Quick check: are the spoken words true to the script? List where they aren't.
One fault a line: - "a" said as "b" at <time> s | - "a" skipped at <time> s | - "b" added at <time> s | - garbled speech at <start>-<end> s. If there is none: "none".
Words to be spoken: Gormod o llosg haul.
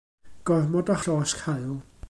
none